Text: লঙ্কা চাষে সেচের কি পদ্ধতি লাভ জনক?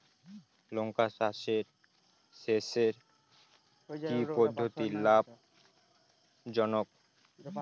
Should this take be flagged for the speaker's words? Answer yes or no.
no